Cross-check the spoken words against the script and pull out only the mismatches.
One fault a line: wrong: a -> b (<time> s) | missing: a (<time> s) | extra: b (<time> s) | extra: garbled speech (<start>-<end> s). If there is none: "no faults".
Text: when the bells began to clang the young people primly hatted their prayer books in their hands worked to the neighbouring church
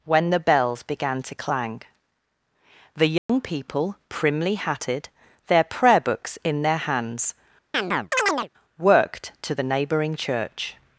no faults